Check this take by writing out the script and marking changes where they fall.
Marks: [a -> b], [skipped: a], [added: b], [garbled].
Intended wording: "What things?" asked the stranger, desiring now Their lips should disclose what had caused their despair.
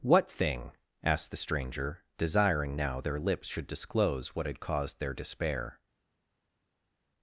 "What [things?" -> thing] asked the stranger, desiring now Their lips should disclose what had caused their despair.